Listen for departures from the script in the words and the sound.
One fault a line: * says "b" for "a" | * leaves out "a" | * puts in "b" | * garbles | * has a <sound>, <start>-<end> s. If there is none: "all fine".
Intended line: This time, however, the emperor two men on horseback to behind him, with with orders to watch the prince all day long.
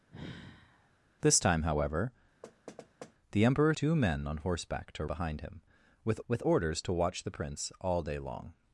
* has a sigh, 0.1-0.9 s
* has a thud, 2.4-3.1 s